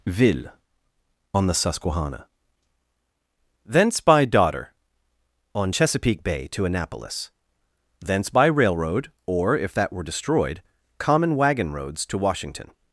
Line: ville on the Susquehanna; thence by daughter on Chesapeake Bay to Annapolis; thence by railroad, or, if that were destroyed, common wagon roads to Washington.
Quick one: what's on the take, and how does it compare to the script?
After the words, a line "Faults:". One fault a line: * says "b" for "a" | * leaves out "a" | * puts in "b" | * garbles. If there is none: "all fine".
ville on the Susquehanna; thence by daughter on Chesapeake Bay to Annapolis; thence by railroad, or, if that were destroyed, common wagon roads to Washington.
Faults:
all fine